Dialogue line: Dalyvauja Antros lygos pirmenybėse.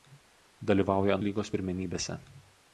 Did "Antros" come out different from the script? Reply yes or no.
yes